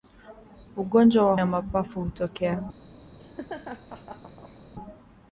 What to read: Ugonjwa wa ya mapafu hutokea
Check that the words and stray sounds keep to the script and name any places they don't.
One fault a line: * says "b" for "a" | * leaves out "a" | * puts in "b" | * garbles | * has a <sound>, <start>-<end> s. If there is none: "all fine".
* has a laugh, 3.2-4.6 s